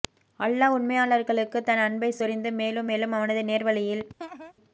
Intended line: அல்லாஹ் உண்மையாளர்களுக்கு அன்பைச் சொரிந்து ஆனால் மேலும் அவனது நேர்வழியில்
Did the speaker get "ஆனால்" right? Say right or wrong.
wrong